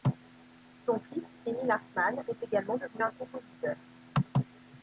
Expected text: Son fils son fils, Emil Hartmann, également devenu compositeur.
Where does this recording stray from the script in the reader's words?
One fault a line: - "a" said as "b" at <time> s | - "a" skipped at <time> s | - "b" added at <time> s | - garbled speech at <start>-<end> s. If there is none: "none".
- "son fils" skipped at 1.2 s
- "est" added at 2.3 s
- "un" added at 3.0 s